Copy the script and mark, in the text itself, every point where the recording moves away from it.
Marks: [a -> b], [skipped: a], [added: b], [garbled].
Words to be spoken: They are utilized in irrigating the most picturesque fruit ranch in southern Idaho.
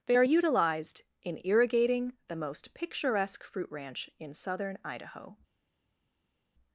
They are utilized in irrigating the most picturesque fruit ranch in southern Idaho.